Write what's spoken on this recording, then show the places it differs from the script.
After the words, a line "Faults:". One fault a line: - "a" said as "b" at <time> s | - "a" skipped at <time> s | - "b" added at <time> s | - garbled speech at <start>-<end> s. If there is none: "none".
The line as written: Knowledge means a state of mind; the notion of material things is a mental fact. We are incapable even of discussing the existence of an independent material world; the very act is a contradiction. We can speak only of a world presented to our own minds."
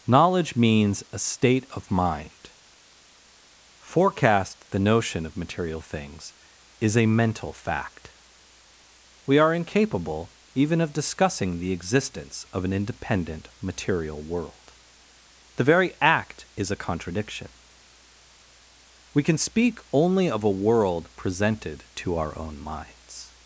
Knowledge means a state of mind; forecast the notion of material things is a mental fact. We are incapable even of discussing the existence of an independent material world; the very act is a contradiction. We can speak only of a world presented to our own minds."
Faults:
- "forecast" added at 3.8 s